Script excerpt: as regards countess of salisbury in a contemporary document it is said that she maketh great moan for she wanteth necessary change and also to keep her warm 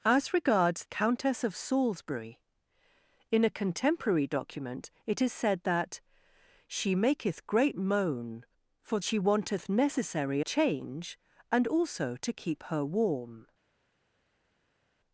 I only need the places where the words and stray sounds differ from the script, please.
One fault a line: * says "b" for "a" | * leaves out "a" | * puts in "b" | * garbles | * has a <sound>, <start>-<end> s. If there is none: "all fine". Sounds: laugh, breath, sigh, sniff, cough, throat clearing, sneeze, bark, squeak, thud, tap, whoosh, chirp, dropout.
all fine